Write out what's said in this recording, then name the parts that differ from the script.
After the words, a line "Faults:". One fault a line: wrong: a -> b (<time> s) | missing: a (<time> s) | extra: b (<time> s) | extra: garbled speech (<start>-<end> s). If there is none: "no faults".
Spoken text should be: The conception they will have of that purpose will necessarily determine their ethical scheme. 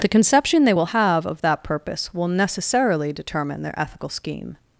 The conception they will have of that purpose will necessarily determine their ethical scheme.
Faults:
no faults